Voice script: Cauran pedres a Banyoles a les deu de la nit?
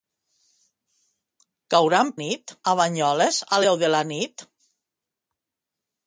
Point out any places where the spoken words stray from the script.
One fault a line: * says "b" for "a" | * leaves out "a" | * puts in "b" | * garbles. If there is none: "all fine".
* says "nit" for "pedres"
* leaves out "les"